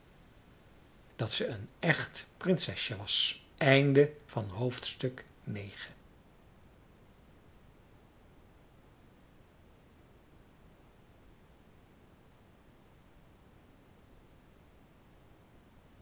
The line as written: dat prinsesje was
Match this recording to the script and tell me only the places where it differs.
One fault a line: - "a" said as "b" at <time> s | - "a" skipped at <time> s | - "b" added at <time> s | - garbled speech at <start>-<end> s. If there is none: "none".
- "ze een echt" added at 1.3 s